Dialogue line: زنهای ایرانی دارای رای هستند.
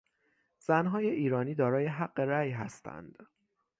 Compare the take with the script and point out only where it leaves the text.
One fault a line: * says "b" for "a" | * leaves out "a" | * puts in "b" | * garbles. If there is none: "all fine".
* puts in "حق"